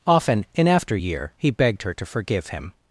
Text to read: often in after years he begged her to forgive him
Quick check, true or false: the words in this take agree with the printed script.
false